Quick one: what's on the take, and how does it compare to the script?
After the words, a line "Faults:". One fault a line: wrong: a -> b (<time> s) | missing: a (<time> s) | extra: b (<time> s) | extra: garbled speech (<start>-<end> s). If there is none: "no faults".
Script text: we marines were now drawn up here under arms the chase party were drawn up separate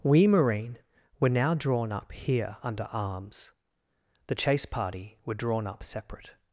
we marine were now drawn up here under arms the chase party were drawn up separate
Faults:
wrong: marines -> marine (0.2 s)